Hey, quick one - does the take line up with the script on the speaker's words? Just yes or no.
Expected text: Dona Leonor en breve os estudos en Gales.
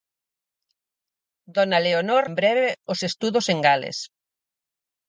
yes